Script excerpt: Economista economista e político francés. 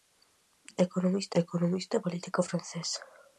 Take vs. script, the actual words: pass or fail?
pass